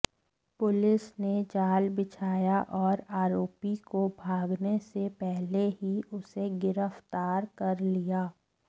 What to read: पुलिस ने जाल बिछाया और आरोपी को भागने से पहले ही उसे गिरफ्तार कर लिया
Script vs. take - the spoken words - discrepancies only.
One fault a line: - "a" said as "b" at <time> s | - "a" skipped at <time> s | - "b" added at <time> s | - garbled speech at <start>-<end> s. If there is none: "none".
none